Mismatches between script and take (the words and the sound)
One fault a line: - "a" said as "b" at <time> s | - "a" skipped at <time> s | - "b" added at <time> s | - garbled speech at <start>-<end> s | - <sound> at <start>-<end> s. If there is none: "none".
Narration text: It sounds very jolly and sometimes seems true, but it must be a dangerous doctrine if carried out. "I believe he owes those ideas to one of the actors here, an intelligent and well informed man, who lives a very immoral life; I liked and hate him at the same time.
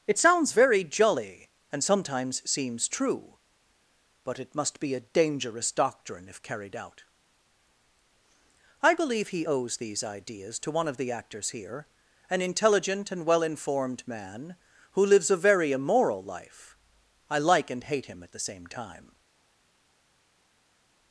- "those" said as "these" at 9.8 s
- "liked" said as "like" at 17.4 s